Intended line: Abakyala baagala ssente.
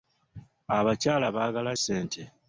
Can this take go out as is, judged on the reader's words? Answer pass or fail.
pass